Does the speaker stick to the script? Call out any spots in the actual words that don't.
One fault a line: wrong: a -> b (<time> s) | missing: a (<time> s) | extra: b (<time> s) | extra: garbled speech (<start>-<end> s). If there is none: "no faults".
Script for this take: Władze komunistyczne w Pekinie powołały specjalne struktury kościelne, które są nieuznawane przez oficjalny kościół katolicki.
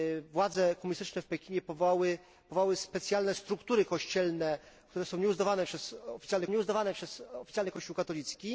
extra: nieuznawane przez oficjalny (6.5 s)